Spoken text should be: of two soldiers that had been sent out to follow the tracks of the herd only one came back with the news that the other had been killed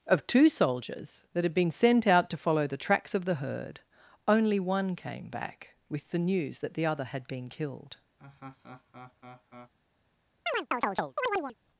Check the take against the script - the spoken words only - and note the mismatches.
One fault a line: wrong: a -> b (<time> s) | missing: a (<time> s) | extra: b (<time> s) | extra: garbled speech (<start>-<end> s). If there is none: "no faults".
no faults